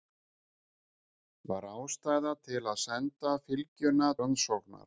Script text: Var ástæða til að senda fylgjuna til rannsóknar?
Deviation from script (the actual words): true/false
true